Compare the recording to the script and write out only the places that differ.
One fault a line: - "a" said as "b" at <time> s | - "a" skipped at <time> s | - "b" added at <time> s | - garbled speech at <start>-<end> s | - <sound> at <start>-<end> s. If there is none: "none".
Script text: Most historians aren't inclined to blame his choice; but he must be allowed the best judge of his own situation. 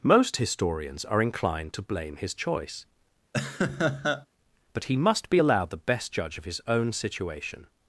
- "aren't" said as "are" at 1.0 s
- laugh at 3.3-4.3 s